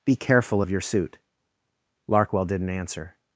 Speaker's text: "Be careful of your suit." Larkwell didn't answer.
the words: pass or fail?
pass